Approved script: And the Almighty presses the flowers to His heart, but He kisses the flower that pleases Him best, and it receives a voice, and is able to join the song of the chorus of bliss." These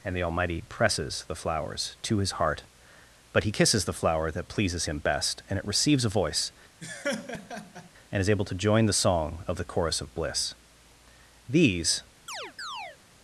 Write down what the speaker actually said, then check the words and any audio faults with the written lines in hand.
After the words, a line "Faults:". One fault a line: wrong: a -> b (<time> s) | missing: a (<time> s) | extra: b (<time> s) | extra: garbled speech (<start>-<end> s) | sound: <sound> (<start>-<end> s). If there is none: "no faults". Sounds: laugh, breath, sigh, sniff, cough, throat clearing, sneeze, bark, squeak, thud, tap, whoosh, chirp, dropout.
And the Almighty presses the flowers to His heart, but He kisses the flower that pleases Him best, and it receives a voice, and is able to join the song of the chorus of bliss." These
Faults:
sound: laugh (6.8-7.9 s)
sound: chirp (12.3-13.0 s)